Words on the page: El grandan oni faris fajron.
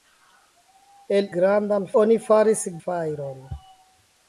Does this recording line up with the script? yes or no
yes